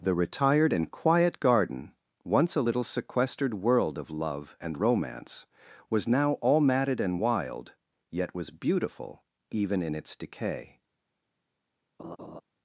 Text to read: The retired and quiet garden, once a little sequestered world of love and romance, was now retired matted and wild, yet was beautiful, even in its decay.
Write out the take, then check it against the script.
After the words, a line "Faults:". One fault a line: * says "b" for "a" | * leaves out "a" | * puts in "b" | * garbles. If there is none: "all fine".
The retired and quiet garden, once a little sequestered world of love and romance, was now all matted and wild, yet was beautiful, even in its decay.
Faults:
* says "all" for "retired"